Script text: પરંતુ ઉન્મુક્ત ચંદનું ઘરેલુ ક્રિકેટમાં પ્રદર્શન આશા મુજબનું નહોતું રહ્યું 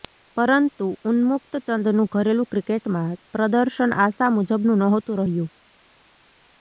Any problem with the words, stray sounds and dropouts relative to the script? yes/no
no